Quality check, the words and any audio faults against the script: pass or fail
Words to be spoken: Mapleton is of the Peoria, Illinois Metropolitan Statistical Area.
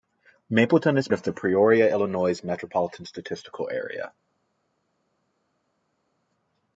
pass